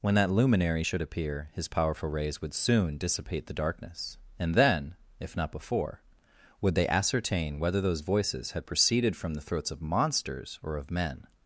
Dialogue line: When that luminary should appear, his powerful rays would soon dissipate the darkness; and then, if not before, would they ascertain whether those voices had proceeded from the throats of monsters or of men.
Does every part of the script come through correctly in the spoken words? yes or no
yes